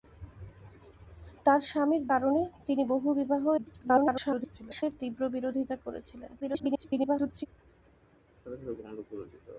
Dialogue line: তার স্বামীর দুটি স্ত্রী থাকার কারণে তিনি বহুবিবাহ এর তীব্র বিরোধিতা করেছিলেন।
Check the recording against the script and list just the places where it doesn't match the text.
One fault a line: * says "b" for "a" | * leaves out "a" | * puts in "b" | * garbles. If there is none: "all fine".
* leaves out "দুটি স্ত্রী থাকার"
* garbles
* garbles